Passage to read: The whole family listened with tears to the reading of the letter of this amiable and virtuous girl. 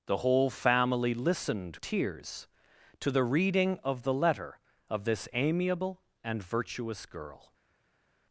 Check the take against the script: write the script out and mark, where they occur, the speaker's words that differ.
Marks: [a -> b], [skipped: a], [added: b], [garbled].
The whole family listened [skipped: with] tears to the reading of the letter of this amiable and virtuous girl.